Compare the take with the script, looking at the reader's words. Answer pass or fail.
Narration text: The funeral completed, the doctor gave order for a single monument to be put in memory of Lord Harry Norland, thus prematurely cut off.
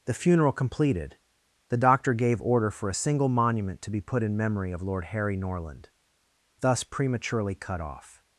pass